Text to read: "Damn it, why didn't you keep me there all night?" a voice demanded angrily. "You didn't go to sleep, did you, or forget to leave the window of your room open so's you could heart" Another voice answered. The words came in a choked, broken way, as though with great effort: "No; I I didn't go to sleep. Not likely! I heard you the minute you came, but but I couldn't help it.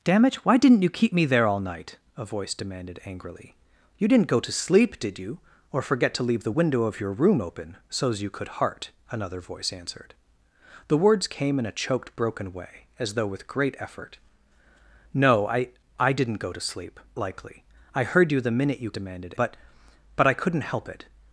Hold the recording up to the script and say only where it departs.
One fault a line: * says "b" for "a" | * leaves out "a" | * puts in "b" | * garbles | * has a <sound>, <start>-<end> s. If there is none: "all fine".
* leaves out "Not"
* says "demanded" for "came"